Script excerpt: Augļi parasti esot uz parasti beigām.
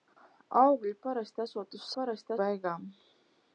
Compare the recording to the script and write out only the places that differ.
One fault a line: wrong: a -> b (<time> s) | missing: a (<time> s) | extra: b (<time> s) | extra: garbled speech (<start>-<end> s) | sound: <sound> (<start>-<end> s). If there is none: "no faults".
no faults